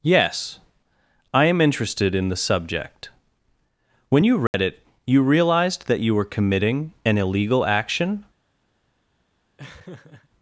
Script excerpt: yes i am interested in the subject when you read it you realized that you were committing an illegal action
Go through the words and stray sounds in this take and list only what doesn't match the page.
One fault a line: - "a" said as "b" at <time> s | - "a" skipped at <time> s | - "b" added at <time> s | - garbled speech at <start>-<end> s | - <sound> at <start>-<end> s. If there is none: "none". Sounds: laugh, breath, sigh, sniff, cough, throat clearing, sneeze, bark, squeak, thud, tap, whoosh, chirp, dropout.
- dropout at 4.5-4.5 s
- laugh at 9.6-10.3 s